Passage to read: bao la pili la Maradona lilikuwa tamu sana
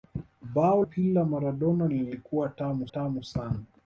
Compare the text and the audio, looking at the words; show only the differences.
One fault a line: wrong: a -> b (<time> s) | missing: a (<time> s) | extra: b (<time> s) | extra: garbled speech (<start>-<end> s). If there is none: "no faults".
missing: la (0.8 s)
extra: tamu (2.8 s)